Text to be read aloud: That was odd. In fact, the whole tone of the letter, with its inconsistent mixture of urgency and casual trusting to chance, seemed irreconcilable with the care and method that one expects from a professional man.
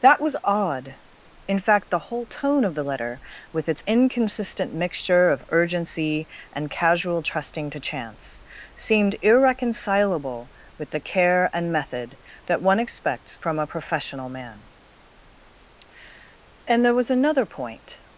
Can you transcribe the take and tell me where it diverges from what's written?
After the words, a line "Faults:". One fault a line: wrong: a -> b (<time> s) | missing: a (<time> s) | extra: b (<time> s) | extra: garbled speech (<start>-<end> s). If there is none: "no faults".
That was odd. In fact, the whole tone of the letter, with its inconsistent mixture of urgency and casual trusting to chance, seemed irreconcilable with the care and method that one expects from a professional man. And there was another point
Faults:
extra: And there was another point (16.6 s)